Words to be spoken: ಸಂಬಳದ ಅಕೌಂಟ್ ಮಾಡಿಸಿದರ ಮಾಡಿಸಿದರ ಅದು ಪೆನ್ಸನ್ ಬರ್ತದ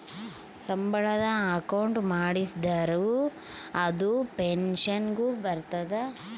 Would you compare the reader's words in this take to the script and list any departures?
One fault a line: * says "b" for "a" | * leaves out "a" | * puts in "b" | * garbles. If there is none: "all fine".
* leaves out "ಮಾಡಿಸಿದರ"
* puts in "ಗು"